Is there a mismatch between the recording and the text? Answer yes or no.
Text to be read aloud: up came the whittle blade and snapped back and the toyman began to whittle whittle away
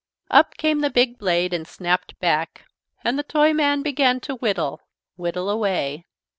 yes